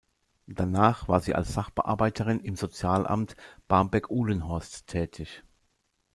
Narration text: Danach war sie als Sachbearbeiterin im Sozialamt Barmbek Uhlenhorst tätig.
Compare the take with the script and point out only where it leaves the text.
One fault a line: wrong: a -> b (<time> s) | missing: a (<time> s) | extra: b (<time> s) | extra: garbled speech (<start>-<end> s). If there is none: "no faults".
no faults